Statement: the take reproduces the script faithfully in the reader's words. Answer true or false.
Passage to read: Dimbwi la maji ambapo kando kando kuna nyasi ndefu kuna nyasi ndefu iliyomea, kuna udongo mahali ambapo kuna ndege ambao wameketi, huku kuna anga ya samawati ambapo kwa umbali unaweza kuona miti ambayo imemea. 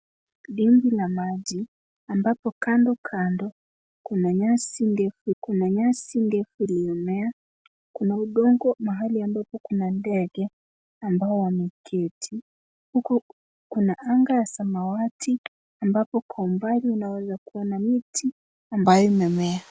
true